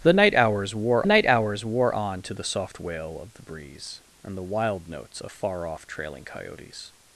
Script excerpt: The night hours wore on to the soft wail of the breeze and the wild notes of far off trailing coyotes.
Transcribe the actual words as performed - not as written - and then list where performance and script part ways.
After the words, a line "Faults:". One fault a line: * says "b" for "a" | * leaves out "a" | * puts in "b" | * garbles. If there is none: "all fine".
The night hours wore night hours wore on to the soft wail of the breeze and the wild notes of far off trailing coyotes.
Faults:
* puts in "night hours wore"